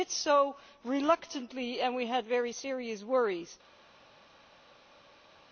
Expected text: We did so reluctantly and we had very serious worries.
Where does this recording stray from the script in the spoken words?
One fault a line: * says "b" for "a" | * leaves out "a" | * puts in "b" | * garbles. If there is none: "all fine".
all fine